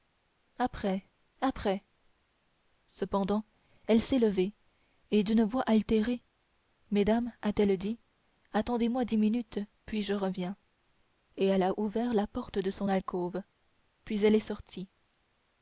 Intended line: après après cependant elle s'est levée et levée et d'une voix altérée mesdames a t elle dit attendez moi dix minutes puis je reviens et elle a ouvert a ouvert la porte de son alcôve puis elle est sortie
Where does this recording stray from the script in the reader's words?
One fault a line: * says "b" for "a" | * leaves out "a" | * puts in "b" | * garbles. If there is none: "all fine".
* leaves out "levée et"
* leaves out "a ouvert"